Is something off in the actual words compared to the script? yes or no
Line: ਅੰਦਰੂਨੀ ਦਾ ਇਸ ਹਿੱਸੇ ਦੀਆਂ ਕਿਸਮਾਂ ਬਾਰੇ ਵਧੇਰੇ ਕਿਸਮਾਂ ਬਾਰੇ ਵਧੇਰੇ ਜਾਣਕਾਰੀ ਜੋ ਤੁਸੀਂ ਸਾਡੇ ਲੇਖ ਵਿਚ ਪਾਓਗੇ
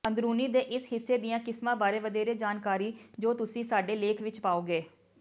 yes